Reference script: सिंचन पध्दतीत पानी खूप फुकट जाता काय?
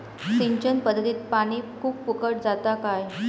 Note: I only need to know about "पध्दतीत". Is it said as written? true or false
true